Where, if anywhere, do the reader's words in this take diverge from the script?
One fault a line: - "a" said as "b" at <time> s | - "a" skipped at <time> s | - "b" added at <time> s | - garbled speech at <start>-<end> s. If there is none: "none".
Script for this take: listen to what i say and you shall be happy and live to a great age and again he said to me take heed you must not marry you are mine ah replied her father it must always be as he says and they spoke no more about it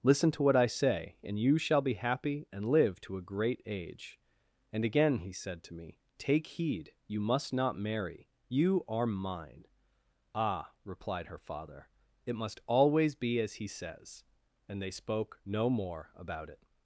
none